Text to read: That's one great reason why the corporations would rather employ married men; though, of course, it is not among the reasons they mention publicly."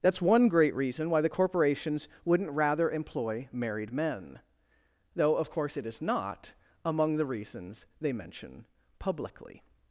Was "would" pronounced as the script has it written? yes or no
no